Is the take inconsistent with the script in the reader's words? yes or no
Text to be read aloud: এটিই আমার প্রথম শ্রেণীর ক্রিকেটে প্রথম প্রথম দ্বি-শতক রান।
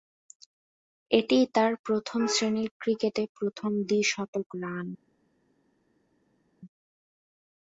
yes